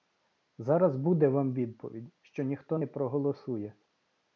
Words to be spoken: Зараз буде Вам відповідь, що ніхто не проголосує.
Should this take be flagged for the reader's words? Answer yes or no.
no